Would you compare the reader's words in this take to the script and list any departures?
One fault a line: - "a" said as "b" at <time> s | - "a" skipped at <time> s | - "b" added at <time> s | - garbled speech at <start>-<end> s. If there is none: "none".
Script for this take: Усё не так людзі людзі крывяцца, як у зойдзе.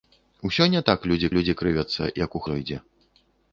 none